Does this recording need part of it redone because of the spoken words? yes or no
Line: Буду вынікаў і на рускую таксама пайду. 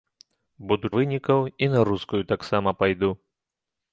no